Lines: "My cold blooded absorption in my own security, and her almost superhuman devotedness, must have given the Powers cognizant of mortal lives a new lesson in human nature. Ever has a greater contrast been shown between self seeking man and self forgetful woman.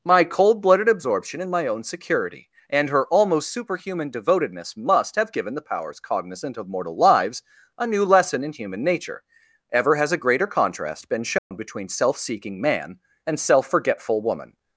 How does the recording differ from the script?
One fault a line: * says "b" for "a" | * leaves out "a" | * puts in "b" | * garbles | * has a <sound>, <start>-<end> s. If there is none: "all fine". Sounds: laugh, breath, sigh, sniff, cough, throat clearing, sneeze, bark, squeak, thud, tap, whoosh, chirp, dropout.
* has a dropout, 11.4-11.5 s